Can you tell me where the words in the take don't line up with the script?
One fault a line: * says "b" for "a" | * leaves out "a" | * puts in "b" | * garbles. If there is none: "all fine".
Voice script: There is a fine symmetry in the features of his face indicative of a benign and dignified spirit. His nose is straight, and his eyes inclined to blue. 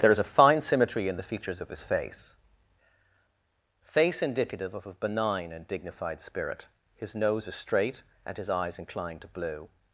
* puts in "face"